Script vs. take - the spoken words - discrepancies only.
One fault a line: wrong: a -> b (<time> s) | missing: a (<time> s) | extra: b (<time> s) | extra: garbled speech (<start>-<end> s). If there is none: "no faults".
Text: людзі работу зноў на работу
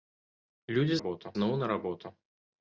no faults